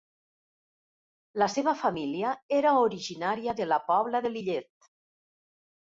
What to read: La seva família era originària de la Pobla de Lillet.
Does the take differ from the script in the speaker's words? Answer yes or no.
no